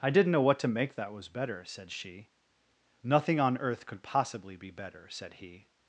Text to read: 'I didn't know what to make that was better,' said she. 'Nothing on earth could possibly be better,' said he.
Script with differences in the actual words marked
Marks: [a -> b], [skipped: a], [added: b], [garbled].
'I didn't know what to make that was better,' said she. 'Nothing on earth could possibly be better,' said he.